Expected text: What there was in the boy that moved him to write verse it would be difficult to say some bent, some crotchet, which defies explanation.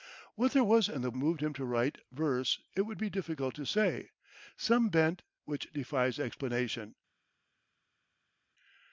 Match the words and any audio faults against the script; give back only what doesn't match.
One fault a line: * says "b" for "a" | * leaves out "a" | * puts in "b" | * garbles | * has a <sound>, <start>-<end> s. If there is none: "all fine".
* leaves out "boy that"
* leaves out "some crotchet"